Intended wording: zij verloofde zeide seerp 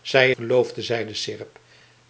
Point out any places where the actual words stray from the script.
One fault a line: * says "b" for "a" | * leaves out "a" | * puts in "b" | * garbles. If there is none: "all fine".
all fine